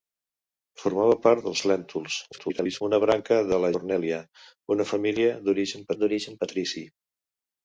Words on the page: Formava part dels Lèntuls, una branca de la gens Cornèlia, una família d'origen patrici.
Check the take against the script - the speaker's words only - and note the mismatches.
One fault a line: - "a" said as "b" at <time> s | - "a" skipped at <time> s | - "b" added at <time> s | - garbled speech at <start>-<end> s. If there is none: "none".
- garbled speech at 2.3-2.8 s
- "gens" skipped at 3.7 s
- "d'origen" added at 6.0 s